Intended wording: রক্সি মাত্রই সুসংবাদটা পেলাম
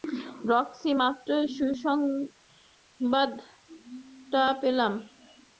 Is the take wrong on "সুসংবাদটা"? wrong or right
right